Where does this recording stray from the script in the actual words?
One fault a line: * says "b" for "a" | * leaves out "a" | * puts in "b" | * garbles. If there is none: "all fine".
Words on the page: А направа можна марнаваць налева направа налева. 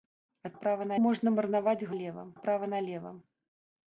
all fine